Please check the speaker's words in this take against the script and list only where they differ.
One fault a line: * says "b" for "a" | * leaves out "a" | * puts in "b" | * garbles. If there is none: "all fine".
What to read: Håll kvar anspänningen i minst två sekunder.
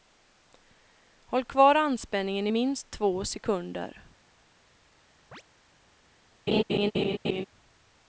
all fine